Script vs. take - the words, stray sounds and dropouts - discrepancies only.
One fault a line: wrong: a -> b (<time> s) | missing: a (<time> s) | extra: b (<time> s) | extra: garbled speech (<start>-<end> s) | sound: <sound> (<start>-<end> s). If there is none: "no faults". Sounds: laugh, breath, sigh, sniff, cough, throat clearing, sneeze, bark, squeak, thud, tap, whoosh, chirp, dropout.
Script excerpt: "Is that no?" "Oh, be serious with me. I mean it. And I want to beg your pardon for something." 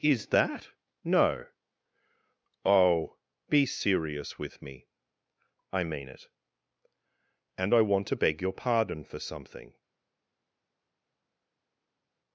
no faults